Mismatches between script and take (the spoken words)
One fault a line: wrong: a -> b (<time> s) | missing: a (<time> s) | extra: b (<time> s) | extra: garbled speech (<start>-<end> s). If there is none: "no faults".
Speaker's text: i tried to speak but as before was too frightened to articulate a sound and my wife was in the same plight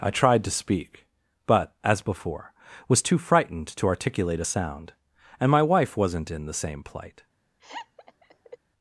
wrong: was -> wasn't (6.0 s)